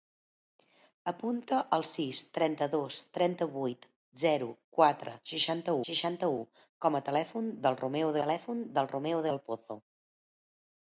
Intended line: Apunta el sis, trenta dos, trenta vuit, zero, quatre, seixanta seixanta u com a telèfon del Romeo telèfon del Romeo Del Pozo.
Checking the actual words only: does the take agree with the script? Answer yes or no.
yes